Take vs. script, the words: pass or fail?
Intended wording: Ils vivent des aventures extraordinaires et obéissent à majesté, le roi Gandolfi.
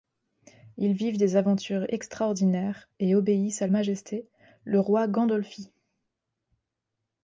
pass